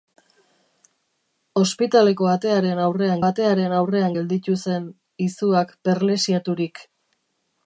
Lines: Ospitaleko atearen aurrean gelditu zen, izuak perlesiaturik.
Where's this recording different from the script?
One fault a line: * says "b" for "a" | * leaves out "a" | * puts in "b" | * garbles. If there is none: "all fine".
* puts in "atearen aurrean"